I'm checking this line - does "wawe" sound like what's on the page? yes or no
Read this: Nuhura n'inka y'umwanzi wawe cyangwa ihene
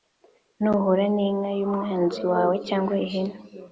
yes